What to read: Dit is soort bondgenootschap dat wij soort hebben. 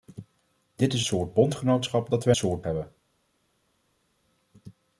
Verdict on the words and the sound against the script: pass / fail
pass